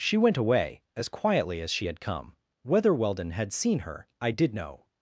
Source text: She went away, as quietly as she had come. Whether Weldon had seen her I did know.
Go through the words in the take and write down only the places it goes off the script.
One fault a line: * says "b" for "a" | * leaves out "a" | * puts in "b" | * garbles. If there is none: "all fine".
all fine